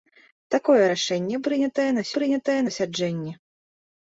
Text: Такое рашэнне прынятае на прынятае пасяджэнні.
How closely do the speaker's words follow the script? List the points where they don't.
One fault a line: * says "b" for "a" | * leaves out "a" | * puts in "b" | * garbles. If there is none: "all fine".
all fine